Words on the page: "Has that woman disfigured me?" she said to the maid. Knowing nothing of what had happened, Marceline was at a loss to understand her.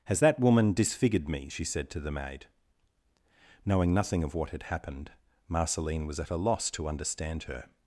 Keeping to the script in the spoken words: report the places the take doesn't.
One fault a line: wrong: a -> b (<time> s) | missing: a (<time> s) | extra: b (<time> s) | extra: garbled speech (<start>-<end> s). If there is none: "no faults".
no faults